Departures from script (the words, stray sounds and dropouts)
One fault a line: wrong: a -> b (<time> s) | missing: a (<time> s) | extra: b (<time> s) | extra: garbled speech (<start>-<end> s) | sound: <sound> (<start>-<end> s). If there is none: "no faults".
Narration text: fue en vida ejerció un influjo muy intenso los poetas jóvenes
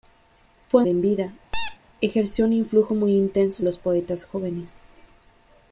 sound: squeak (1.5-1.8 s)